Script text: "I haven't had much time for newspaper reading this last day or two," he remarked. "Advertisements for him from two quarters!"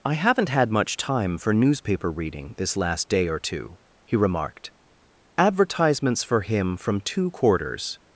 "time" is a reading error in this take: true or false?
false